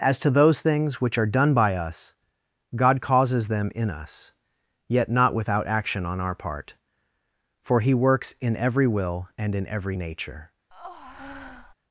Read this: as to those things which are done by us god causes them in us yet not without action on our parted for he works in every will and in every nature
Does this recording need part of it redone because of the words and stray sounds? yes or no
yes